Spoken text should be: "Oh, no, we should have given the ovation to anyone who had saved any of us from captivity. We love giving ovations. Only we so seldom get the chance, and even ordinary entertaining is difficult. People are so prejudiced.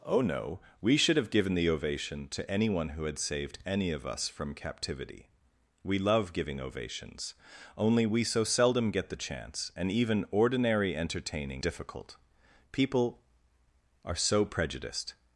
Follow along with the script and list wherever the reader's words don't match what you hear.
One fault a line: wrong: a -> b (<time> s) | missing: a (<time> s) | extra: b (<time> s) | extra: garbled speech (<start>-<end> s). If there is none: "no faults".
missing: is (11.6 s)